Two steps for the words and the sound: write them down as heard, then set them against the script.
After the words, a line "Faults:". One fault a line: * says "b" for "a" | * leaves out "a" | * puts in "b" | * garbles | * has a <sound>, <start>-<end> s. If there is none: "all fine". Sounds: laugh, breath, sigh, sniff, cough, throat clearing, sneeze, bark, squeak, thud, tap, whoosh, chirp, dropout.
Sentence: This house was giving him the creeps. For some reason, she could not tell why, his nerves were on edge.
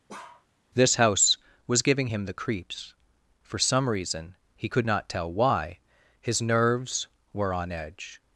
This house was giving him the creeps. For some reason, he could not tell why, his nerves were on edge.
Faults:
* has a bark, 0.1-0.5 s
* says "he" for "she"